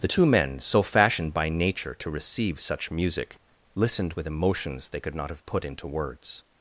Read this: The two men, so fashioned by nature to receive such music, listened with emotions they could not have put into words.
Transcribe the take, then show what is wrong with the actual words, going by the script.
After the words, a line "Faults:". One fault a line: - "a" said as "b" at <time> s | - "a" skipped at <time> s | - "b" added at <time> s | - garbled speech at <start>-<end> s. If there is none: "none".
The two men, so fashioned by nature to receive such music, listened with emotions they could not have put into words.
Faults:
none